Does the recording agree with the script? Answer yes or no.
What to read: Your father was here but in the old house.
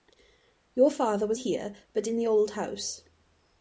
yes